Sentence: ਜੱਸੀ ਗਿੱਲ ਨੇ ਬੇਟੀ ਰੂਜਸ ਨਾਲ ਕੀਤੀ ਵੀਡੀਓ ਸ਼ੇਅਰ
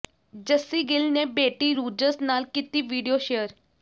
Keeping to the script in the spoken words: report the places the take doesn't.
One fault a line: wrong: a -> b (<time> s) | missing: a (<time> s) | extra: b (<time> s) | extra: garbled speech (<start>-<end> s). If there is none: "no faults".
no faults